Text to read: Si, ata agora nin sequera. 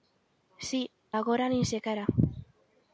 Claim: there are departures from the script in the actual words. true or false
true